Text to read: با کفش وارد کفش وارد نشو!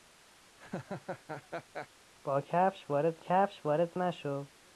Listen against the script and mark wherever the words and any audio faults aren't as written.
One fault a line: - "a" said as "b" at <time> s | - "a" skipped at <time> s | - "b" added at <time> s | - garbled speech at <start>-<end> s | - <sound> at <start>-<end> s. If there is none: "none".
- laugh at 0.6-1.9 s